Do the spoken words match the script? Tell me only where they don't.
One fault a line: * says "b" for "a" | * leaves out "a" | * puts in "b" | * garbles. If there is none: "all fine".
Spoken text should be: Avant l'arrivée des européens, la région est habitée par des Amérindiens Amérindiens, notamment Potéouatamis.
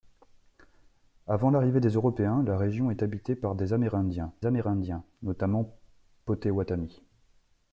all fine